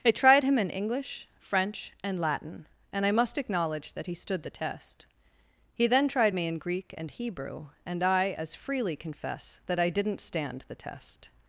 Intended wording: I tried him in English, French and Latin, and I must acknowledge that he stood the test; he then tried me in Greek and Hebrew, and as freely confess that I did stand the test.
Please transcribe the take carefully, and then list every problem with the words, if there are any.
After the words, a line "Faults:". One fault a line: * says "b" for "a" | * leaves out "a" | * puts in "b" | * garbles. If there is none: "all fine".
I tried him in English, French and Latin, and I must acknowledge that he stood the test; he then tried me in Greek and Hebrew, and I as freely confess that I didn't stand the test.
Faults:
* puts in "I"
* says "didn't" for "did"